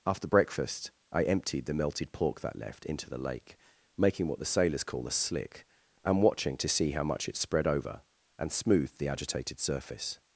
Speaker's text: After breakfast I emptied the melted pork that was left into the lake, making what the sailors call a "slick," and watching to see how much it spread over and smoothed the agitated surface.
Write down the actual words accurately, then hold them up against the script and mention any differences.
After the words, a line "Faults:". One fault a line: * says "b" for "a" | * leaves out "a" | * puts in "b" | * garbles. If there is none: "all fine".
After breakfast I emptied the melted pork that left into the lake, making what the sailors call a "slick," and watching to see how much it spread over and smoothed the agitated surface.
Faults:
* leaves out "was"